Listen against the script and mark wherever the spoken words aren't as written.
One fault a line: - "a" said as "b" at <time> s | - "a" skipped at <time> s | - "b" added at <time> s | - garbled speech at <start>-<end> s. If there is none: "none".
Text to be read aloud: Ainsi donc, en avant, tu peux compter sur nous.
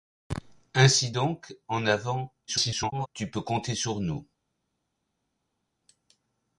- garbled speech at 2.5-3.1 s